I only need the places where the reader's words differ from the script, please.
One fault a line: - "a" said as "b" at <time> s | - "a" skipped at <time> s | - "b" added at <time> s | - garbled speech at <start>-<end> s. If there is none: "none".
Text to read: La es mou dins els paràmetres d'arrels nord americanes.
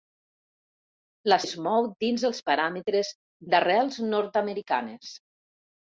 none